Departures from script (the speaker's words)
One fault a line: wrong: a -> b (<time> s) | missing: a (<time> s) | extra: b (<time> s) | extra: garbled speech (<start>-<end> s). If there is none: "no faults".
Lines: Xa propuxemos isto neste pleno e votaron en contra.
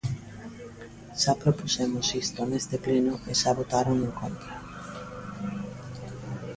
extra: xa (3.4 s)